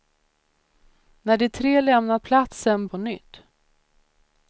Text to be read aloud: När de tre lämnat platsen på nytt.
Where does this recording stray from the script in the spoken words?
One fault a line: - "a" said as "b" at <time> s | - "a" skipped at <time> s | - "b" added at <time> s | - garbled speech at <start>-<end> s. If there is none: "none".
none